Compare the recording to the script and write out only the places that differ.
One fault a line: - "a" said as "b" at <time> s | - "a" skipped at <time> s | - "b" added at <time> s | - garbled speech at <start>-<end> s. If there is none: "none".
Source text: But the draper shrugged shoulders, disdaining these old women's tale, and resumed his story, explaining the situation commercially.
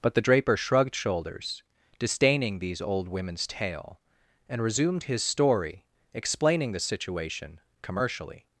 none